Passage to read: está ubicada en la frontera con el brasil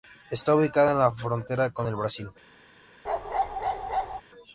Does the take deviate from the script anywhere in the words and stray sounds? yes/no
yes